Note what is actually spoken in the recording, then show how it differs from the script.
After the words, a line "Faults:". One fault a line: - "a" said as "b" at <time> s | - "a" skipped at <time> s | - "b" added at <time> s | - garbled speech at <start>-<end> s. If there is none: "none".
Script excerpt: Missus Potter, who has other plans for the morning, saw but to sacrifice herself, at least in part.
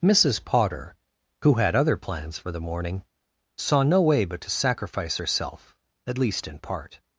Missus Potter, who had other plans for the morning, saw no way but to sacrifice herself, at least in part.
Faults:
- "has" said as "had" at 1.6 s
- "no way" added at 3.8 s